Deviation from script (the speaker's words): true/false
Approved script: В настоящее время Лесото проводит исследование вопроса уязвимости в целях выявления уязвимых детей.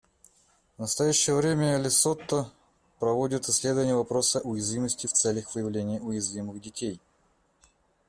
false